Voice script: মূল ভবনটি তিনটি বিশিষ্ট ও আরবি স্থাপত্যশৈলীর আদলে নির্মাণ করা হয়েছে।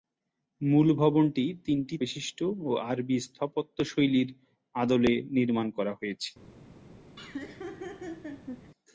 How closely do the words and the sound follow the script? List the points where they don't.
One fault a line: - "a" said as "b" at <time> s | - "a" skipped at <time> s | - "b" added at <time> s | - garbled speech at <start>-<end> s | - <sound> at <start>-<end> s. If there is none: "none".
- laugh at 7.2-8.7 s